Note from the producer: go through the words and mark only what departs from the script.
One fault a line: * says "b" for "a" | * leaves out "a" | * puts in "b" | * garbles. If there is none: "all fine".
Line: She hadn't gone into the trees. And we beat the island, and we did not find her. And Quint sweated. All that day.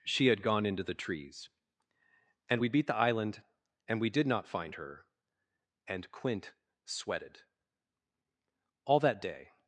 * says "had" for "hadn't"